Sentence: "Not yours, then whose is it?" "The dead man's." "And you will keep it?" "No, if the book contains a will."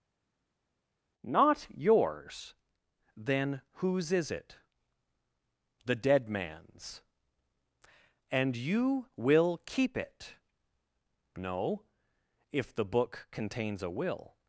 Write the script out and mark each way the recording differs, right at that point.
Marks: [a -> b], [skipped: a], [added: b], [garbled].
"Not yours, then whose is it?" "The dead man's." "And you will keep it?" "No, if the book contains a will."